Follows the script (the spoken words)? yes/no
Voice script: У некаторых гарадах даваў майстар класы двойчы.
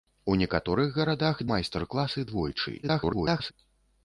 no